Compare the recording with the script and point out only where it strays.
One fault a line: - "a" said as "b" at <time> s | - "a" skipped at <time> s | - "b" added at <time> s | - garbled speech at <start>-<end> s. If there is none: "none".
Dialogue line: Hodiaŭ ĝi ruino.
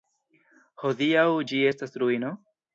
- "estas" added at 1.7 s